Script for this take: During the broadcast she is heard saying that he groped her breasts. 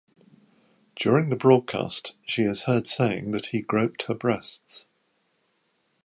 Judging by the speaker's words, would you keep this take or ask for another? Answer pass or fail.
pass